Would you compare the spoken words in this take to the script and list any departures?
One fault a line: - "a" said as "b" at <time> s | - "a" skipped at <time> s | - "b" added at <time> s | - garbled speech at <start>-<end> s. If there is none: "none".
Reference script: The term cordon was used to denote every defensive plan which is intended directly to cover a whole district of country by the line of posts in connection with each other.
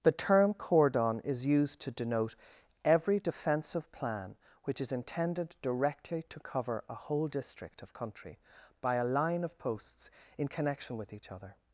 - "was" said as "is" at 1.2 s
- "the" said as "a" at 8.9 s